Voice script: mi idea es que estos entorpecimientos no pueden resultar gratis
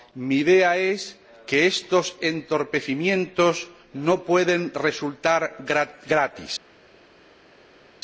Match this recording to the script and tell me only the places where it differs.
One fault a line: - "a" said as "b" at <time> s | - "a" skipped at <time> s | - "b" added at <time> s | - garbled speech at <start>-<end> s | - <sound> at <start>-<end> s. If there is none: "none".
none